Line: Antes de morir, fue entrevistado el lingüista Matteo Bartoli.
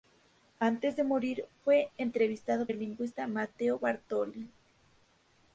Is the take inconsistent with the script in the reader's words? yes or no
no